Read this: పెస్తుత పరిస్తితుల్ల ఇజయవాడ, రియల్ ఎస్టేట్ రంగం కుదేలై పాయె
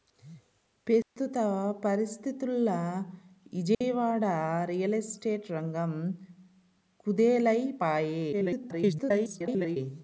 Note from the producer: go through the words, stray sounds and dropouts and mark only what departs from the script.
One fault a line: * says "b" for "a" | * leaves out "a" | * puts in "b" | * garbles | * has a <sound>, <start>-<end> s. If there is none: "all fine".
* has a dropout, 1.0-1.2 s
* has a dropout, 3.7-3.8 s
* garbles